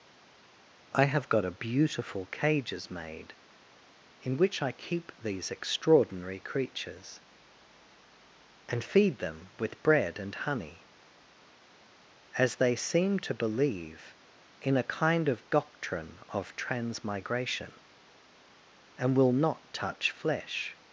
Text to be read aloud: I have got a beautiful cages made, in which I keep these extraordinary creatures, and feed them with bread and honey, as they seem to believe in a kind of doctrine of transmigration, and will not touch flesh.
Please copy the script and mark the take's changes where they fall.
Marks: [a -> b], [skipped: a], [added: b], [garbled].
I have got a beautiful cages made, in which I keep these extraordinary creatures, and feed them with bread and honey, as they seem to believe in a kind of doctrine of transmigration, and will not touch flesh.